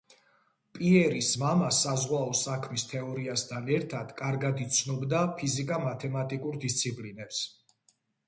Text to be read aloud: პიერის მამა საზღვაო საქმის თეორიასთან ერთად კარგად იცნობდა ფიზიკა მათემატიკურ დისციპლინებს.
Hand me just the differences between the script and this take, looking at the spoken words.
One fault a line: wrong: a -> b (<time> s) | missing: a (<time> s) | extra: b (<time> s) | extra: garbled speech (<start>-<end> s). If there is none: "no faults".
no faults